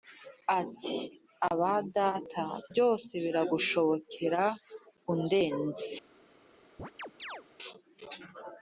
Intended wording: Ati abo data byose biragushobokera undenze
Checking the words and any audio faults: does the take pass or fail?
fail